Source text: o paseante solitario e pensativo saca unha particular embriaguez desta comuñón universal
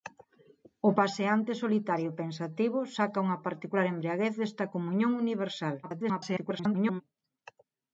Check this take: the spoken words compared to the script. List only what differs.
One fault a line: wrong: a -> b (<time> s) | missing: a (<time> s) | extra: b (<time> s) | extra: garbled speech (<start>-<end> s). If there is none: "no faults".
extra: garbled speech (5.8-7.0 s)